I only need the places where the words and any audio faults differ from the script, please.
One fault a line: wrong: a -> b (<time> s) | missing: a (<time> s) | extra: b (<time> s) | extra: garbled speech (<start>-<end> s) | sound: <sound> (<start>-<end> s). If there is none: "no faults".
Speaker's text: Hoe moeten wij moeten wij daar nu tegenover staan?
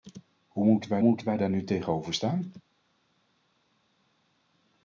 no faults